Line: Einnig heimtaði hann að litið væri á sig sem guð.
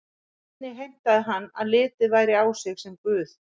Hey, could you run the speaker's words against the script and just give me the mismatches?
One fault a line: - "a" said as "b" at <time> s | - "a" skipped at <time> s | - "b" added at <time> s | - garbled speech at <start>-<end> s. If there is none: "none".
none